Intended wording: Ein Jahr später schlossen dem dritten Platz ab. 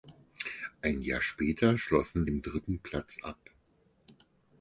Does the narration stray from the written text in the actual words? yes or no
no